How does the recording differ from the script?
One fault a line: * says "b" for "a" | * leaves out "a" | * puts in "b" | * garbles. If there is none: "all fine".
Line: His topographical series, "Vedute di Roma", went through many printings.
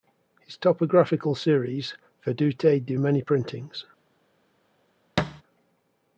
* leaves out "Roma went through"